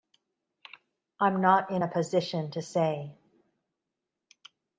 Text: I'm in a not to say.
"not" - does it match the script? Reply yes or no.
no